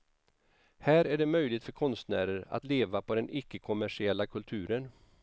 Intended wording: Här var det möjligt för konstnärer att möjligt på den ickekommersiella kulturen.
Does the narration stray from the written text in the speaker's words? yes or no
yes